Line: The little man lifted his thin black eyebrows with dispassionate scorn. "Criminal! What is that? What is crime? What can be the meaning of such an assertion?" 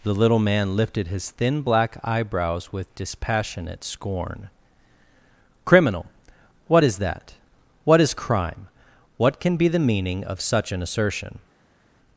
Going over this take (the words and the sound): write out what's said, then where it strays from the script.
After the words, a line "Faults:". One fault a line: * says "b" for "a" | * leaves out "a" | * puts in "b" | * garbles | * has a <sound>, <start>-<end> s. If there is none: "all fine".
The little man lifted his thin black eyebrows with dispassionate scorn. "Criminal! What is that? What is crime? What can be the meaning of such an assertion?"
Faults:
all fine